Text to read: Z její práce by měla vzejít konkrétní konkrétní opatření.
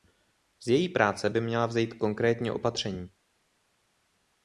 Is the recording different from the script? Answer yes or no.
yes